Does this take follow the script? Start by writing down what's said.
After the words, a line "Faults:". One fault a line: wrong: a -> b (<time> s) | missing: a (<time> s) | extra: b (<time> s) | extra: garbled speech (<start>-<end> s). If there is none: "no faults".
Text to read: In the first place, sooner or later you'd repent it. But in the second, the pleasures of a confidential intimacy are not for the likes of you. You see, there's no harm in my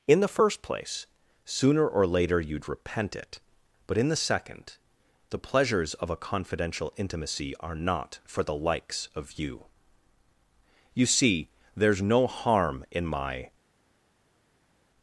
In the first place, sooner or later you'd repent it. But in the second, the pleasures of a confidential intimacy are not for the likes of you. You see, there's no harm in my
Faults:
no faults